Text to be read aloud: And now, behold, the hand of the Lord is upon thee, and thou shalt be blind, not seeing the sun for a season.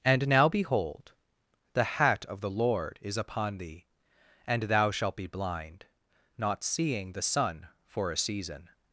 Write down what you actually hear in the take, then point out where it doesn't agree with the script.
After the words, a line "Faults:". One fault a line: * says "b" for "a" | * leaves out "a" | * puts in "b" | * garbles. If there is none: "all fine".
And now, behold, the hat of the Lord is upon thee, and thou shalt be blind, not seeing the sun for a season.
Faults:
* says "hat" for "hand"